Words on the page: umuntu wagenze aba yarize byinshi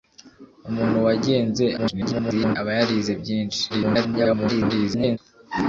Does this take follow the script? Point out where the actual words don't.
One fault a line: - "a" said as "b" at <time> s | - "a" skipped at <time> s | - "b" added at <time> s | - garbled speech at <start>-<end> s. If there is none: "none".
- garbled speech at 1.8-2.6 s
- garbled speech at 3.7-5.2 s